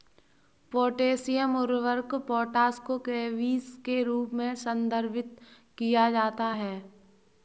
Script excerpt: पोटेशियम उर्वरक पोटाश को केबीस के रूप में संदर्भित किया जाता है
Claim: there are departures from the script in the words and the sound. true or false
false